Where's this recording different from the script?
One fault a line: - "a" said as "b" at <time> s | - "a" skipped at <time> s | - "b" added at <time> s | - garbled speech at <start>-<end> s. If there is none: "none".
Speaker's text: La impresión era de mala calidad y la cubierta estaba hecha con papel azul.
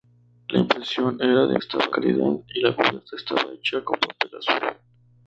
- "mala" said as "estaba" at 1.6 s